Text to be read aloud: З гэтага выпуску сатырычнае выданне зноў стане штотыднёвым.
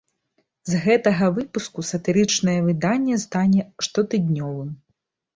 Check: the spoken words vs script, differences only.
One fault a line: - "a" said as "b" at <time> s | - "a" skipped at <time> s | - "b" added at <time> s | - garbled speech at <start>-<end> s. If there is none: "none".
- "зноў" skipped at 3.2 s